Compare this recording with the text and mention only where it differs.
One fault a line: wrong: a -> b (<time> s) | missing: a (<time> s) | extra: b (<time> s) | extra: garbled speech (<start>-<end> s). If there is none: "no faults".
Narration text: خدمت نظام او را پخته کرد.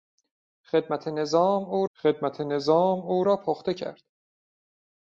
extra: خدمت نظام او (2.0 s)